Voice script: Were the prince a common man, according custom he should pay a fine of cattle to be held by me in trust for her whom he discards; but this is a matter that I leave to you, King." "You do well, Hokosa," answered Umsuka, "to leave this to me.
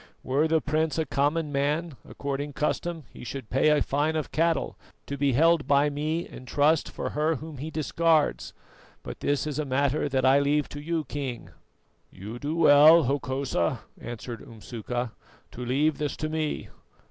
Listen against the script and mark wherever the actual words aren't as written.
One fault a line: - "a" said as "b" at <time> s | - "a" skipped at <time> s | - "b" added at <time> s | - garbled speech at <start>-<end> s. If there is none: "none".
none